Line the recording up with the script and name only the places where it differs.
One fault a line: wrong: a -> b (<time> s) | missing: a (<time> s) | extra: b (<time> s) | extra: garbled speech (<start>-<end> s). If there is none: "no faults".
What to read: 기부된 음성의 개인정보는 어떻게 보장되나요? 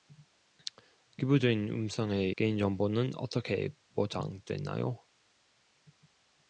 no faults